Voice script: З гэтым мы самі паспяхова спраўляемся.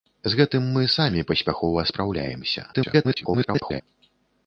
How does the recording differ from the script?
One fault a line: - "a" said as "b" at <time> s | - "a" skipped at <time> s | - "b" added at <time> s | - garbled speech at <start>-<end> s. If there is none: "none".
- garbled speech at 2.7-3.8 s